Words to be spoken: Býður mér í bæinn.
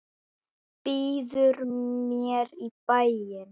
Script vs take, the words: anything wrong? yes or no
no